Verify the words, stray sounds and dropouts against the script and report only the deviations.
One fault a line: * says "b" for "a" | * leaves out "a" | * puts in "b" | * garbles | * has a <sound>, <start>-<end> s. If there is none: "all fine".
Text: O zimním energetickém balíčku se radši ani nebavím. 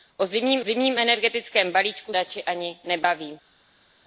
* puts in "zimním"
* leaves out "se"